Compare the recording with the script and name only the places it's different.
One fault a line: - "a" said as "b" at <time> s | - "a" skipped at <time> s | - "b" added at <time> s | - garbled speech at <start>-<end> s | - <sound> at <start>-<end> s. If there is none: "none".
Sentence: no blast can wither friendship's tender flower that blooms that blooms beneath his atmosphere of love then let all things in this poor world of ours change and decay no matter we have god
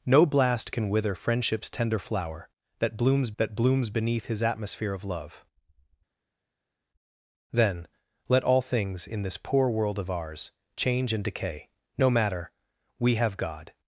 none